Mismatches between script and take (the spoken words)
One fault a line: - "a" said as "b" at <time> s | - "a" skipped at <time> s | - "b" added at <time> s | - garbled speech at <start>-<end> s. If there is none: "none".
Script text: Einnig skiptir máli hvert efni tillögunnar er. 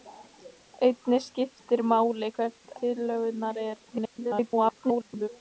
- "efni" skipped at 2.7 s
- garbled speech at 3.8-5.3 s